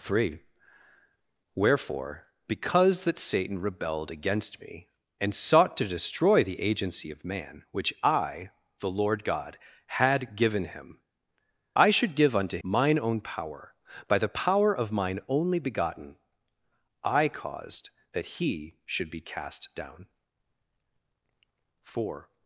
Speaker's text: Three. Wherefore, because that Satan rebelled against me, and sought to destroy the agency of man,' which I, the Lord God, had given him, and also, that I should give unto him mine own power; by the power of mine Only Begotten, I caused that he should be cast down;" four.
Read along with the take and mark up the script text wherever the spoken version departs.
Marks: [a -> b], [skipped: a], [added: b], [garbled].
Three. Wherefore, because that Satan rebelled against me, and sought to destroy the agency of man,' which I, the Lord God, had given him, [skipped: and also, that] I should give unto [skipped: him] mine own power; by the power of mine Only Begotten, I caused that he should be cast down;" four.